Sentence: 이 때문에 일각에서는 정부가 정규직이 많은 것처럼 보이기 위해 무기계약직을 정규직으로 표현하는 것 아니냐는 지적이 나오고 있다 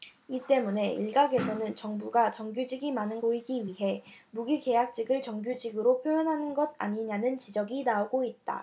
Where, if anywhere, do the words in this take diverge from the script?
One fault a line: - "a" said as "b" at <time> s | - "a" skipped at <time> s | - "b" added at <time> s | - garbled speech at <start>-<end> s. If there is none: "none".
- "것처럼" skipped at 3.2 s